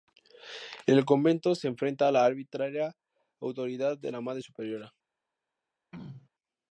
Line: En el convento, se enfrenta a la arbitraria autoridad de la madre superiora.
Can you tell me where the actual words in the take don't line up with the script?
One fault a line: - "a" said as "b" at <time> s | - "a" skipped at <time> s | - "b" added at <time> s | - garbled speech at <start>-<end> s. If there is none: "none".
none